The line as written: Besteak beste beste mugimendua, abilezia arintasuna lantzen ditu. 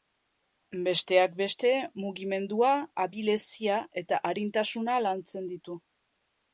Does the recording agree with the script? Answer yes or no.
no